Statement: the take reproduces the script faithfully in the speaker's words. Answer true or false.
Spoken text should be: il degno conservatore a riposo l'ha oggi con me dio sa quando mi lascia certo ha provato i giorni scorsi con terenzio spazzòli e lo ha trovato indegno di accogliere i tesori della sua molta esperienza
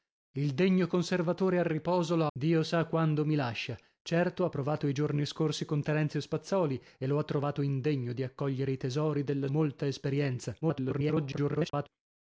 false